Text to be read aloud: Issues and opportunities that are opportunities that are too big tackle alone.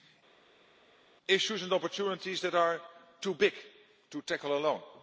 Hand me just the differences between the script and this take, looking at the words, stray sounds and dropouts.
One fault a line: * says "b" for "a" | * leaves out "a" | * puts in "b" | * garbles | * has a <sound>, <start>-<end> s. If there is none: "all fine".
* leaves out "opportunities that are"
* puts in "to"